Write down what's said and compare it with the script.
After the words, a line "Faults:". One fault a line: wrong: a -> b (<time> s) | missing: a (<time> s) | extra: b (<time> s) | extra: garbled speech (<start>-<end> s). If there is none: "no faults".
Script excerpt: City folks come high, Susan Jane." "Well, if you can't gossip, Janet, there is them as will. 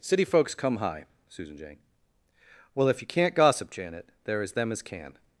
City folks come high, Susan Jane." "Well, if you can't gossip, Janet, there is them as can.
Faults:
wrong: will -> can (4.8 s)